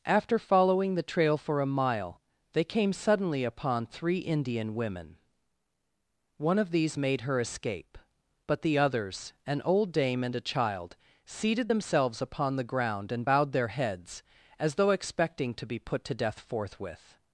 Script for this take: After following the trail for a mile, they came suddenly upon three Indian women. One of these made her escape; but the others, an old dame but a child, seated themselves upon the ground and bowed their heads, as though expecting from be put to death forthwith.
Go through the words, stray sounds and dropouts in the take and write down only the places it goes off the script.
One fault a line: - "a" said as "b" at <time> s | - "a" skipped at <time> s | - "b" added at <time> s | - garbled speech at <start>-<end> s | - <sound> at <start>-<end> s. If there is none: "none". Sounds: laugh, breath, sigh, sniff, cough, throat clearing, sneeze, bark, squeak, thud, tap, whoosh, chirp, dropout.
- "but" said as "and" at 10.2 s
- "from" said as "to" at 15.5 s